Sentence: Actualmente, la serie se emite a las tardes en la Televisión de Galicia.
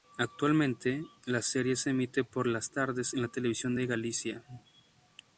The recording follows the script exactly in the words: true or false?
false